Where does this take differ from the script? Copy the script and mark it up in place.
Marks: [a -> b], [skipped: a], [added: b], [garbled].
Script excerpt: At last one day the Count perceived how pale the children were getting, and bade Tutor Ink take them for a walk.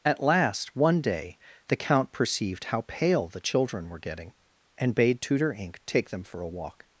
At last one day the Count perceived how pale the children were getting, and bade Tutor Ink take them for a walk.